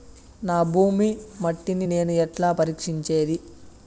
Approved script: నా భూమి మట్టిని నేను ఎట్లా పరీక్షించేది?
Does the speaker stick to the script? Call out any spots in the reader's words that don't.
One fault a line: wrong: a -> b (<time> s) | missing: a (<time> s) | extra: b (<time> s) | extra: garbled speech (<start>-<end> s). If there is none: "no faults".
no faults